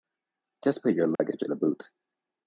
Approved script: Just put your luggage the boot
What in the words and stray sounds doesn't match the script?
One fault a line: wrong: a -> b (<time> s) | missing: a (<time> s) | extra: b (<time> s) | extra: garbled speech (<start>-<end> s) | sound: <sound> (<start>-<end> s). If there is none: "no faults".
sound: dropout (1.2-1.2 s)